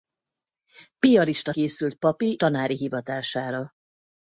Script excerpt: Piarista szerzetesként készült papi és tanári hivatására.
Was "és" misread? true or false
true